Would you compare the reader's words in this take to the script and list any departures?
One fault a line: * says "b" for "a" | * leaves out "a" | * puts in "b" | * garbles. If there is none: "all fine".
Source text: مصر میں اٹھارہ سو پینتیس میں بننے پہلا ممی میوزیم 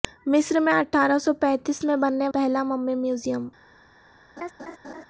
all fine